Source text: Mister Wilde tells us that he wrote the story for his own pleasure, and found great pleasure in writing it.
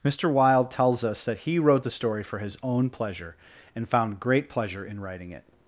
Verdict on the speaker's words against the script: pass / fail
pass